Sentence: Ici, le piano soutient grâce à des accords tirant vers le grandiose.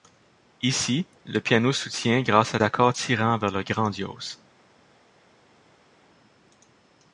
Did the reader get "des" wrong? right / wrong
wrong